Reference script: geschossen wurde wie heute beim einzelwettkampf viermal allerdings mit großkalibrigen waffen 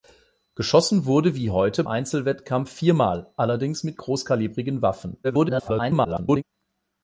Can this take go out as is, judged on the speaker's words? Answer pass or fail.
fail